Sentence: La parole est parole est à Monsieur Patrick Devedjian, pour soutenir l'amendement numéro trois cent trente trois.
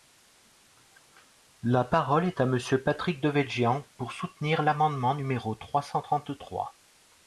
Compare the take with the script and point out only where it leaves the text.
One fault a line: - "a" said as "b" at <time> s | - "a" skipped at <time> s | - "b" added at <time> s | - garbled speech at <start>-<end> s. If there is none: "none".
- "parole est" skipped at 2.4 s